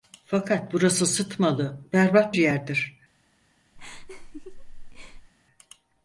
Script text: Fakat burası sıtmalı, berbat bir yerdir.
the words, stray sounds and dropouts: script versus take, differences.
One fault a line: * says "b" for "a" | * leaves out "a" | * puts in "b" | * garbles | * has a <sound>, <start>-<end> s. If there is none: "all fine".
* leaves out "bir"
* has a laugh, 3.8-5.3 s